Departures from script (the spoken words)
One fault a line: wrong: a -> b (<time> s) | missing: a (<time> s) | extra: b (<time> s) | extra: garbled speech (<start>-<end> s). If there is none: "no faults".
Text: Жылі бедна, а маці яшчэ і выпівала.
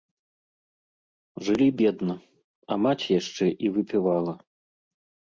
no faults